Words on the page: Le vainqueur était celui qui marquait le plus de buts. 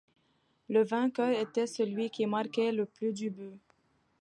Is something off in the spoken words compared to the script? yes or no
no